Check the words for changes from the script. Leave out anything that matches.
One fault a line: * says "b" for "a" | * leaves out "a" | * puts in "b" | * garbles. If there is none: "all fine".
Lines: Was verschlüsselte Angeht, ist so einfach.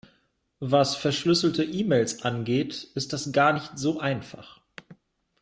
* puts in "E Mails"
* puts in "das gar nicht"